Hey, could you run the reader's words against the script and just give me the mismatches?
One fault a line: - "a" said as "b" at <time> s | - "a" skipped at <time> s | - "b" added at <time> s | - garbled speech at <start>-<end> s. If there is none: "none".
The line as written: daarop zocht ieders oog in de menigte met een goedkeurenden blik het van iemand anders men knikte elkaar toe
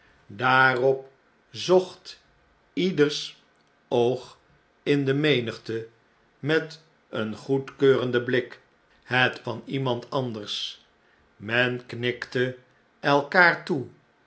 none